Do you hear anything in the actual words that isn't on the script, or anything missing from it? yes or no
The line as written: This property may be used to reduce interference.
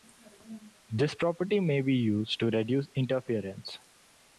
no